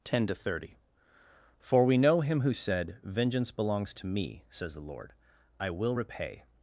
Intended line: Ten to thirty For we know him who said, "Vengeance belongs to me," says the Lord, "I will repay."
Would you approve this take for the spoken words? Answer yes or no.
yes